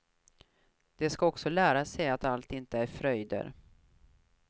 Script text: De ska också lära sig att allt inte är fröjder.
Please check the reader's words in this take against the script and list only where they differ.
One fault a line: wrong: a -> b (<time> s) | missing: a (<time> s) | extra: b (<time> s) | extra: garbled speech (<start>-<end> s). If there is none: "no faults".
no faults